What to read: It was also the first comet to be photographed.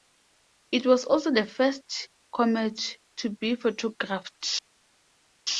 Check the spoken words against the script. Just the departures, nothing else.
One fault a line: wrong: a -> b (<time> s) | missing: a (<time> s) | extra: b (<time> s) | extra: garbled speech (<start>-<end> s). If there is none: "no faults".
no faults